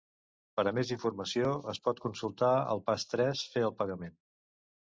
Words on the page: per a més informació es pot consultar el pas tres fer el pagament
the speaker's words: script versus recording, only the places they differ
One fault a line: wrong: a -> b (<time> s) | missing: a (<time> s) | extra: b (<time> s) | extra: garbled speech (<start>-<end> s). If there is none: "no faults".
no faults